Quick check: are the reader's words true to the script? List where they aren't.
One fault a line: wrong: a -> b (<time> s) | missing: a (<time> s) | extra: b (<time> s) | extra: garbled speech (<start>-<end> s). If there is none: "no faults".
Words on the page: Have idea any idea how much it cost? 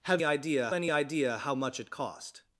no faults